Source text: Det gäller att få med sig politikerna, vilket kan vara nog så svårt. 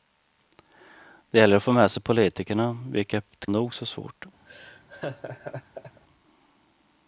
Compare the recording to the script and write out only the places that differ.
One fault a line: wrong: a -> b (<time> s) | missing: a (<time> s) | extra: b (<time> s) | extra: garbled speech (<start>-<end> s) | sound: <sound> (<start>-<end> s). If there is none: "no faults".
missing: kan vara (3.5 s)
sound: laugh (4.5-6.0 s)